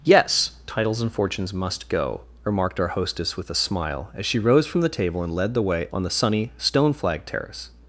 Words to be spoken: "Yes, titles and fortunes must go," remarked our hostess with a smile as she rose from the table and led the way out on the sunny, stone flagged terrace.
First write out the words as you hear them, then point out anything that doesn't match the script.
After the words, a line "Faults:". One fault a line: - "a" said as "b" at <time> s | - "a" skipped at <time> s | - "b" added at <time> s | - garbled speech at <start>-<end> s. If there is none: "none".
"Yes, titles and fortunes must go," remarked our hostess with a smile as she rose from the table and led the way on the sunny, stone flagged terrace.
Faults:
- "out" skipped at 5.9 s